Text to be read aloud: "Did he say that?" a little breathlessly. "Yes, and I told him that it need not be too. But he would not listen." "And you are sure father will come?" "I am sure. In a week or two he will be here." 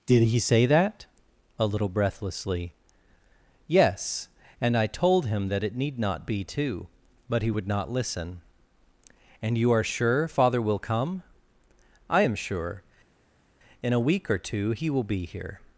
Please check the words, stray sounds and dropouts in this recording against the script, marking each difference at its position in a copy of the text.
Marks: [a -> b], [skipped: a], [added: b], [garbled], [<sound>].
"Did he say that?" a little breathlessly. "Yes, and I told him that it need not be too. But he would not listen." "And you are sure father will come?" "I am sure. In a week or two he will be here."